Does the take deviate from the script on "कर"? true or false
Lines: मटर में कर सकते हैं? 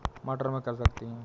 false